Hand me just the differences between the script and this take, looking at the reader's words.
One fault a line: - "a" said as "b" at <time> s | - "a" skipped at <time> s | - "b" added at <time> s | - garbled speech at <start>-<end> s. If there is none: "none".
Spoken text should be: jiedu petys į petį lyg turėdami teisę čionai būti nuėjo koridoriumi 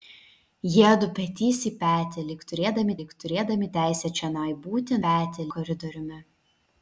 - "lyg turėdami" added at 3.0 s
- "nuėjo" said as "petį" at 5.0 s